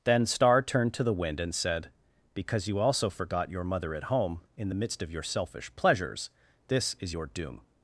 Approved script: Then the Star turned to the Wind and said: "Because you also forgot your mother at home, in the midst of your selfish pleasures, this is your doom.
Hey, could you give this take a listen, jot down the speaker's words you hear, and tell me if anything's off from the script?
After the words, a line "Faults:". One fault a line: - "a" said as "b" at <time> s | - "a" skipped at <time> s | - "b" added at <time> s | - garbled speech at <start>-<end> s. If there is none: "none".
Then Star turned to the Wind and said: "Because you also forgot your mother at home, in the midst of your selfish pleasures, this is your doom.
Faults:
- "the" skipped at 0.2 s